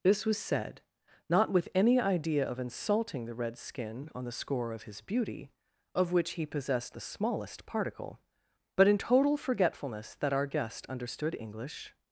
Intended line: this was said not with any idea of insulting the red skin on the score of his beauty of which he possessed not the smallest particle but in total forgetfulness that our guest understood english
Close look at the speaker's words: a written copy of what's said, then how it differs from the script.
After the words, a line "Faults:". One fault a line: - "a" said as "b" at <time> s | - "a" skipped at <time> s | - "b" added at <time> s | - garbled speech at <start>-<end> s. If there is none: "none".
this was said not with any idea of insulting the red skin on the score of his beauty of which he possessed the smallest particle but in total forgetfulness that our guest understood english
Faults:
- "not" skipped at 7.0 s